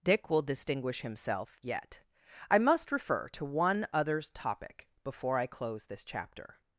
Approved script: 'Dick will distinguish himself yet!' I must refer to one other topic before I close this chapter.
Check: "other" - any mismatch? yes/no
yes